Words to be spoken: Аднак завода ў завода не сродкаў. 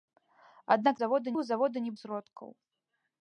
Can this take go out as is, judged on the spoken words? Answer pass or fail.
pass